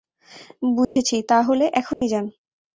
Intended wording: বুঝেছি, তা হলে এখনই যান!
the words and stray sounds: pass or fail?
fail